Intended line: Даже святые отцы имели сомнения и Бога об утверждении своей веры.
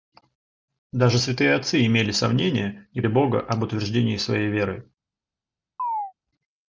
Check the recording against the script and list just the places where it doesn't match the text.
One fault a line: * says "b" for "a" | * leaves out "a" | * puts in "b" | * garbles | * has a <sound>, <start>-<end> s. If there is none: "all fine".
* has a chirp, 5.8-6.1 s